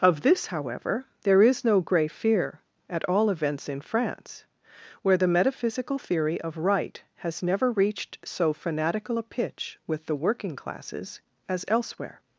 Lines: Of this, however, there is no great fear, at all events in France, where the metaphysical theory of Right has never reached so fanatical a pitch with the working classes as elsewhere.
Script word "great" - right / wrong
wrong